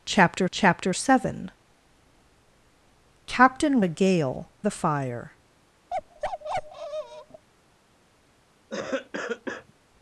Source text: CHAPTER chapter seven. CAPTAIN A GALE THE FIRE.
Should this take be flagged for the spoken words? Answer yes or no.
no